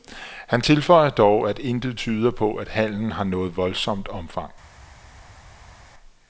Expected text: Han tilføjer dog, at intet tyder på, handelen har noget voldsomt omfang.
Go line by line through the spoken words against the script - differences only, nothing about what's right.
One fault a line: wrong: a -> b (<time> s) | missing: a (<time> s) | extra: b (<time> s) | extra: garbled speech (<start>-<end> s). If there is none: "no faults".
extra: at (2.5 s)